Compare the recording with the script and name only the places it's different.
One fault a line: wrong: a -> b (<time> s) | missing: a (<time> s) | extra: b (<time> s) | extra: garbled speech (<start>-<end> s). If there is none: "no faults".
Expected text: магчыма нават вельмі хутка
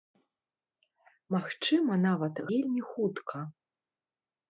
no faults